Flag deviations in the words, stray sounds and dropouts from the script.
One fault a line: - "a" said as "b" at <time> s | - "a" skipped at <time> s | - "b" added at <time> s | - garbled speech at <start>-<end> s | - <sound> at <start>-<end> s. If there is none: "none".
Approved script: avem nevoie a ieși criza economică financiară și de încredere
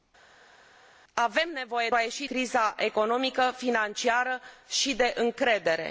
none